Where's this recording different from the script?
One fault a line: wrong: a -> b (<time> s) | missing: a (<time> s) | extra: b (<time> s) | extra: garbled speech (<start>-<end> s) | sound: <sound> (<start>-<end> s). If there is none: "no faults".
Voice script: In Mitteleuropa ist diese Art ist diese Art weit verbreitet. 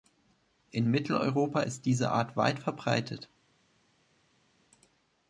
missing: ist diese Art (2.4 s)